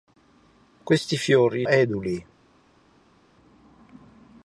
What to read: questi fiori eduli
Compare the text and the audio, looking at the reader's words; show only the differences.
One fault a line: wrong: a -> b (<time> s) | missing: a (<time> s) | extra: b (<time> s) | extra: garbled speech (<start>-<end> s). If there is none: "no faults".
no faults